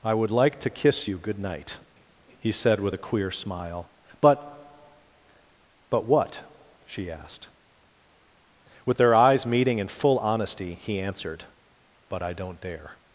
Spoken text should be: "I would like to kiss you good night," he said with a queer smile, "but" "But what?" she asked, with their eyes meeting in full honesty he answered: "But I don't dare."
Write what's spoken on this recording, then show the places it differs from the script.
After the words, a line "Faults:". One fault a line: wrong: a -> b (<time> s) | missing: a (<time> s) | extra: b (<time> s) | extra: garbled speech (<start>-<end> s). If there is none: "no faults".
"I would like to kiss you good night," he said with a queer smile, "but" "But what?" she asked, with their eyes meeting in full honesty he answered: "But I don't dare."
Faults:
no faults